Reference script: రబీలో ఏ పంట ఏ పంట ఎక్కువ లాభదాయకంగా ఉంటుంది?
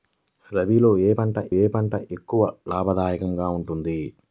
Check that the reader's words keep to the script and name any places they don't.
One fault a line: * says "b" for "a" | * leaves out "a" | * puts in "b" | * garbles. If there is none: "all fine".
all fine